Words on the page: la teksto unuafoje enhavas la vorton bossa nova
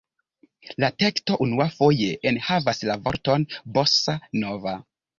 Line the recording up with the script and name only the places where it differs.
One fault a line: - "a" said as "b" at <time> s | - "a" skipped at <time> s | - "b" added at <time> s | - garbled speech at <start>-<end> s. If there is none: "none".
none